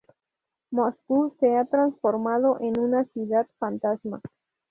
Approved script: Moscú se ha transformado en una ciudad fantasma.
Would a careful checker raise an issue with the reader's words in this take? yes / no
no